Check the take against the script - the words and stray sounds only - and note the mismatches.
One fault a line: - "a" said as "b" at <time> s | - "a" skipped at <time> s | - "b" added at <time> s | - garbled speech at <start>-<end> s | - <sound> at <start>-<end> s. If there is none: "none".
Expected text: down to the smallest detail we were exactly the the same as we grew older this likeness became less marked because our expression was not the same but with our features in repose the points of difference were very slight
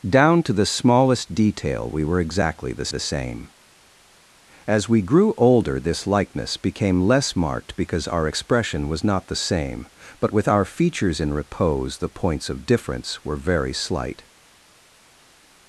none